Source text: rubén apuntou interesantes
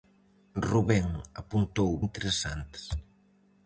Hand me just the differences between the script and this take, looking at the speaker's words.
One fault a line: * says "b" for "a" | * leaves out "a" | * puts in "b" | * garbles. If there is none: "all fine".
all fine